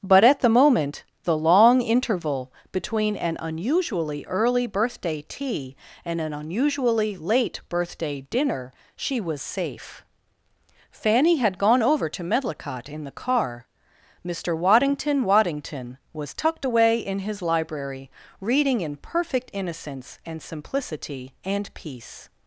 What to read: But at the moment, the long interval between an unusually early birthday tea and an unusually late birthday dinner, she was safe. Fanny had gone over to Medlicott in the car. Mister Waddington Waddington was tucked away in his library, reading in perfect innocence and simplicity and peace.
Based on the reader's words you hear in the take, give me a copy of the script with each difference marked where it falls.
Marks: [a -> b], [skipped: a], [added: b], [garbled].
But at the moment, the long interval between an unusually early birthday tea and an unusually late birthday dinner, she was safe. Fanny had gone over to Medlicott in the car. Mister Waddington Waddington was tucked away in his library, reading in perfect innocence and simplicity and peace.